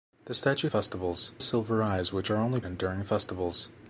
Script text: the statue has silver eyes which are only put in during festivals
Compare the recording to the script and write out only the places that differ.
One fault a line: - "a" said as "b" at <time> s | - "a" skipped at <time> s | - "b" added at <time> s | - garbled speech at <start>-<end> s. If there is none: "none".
- "has" said as "festivals" at 0.6 s
- "put" skipped at 2.6 s